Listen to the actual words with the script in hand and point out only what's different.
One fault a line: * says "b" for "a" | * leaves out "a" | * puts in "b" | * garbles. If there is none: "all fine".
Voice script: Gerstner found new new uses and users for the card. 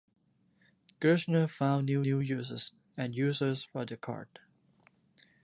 all fine